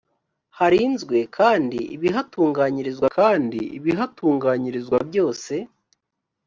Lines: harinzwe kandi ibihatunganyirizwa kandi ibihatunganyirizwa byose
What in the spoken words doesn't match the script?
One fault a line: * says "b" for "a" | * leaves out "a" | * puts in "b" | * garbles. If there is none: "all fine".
all fine